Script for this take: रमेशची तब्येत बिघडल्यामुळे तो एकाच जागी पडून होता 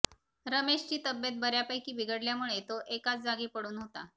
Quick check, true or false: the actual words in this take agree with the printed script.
false